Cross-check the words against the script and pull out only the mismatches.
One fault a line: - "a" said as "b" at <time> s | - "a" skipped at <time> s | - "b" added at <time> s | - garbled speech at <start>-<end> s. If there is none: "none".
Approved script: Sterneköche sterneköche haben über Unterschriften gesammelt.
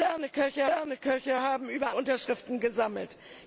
none